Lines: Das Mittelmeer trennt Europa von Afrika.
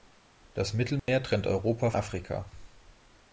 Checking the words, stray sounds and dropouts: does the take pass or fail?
fail